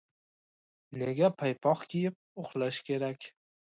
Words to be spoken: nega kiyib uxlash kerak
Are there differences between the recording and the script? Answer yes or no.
yes